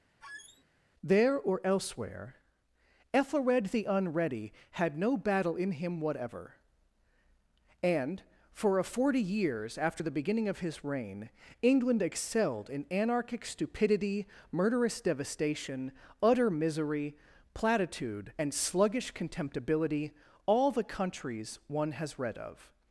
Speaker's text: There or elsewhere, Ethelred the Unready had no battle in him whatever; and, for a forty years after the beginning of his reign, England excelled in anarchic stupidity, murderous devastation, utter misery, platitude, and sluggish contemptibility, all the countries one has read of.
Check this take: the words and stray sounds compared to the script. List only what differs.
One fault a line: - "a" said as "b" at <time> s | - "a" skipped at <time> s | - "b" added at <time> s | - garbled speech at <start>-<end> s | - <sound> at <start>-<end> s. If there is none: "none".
- squeak at 0.2-0.6 s